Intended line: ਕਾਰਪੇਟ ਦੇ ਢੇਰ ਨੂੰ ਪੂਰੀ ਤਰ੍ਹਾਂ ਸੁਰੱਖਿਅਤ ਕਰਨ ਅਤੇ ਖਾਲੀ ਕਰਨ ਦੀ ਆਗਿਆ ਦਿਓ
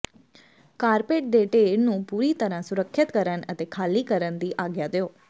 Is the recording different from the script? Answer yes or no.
no